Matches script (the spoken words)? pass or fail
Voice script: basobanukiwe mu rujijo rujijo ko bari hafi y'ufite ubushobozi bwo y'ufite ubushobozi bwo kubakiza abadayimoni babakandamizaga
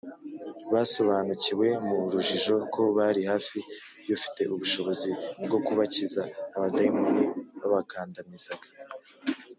fail